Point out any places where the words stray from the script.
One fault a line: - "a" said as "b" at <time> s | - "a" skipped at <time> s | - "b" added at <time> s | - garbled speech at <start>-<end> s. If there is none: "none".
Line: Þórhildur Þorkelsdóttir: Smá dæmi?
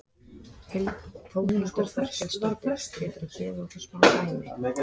- "Geturðu gefið okkur" added at 3.0 s